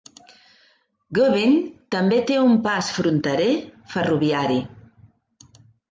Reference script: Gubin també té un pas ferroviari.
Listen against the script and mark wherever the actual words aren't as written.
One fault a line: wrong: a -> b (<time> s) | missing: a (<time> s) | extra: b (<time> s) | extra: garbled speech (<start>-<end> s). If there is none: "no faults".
extra: fronterer (3.0 s)